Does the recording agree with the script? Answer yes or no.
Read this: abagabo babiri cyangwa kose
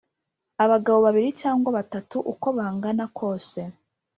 no